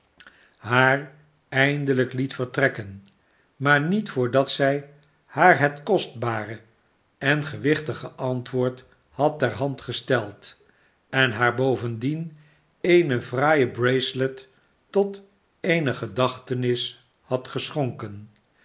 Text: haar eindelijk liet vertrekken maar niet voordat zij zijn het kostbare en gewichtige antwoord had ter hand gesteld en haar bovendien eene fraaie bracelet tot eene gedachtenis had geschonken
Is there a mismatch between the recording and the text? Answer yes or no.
yes